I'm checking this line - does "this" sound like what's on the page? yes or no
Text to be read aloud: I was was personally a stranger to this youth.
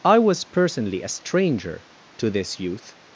yes